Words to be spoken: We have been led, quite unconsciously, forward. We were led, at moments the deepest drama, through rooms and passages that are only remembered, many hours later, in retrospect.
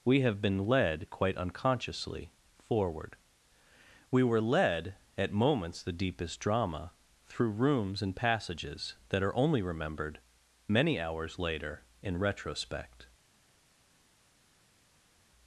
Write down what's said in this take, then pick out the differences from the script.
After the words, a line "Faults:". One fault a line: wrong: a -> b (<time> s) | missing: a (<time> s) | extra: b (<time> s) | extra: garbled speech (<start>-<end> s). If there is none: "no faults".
We have been led, quite unconsciously, forward. We were led, at moments the deepest drama, through rooms and passages that are only remembered, many hours later, in retrospect.
Faults:
no faults